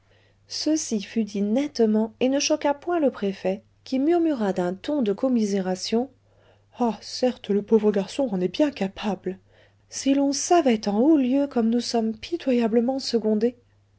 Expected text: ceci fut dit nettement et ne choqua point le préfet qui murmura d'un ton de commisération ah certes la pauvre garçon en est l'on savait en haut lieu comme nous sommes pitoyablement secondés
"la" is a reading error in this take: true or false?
true